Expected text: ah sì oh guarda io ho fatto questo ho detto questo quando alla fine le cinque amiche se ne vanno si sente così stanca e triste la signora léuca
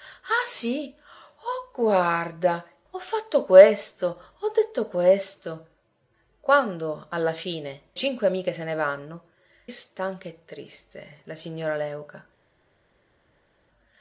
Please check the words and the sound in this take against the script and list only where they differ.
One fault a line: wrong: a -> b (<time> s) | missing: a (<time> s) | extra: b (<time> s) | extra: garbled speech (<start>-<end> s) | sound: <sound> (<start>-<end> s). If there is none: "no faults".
missing: io (2.6 s)
missing: le (7.8 s)
missing: si sente così (9.3 s)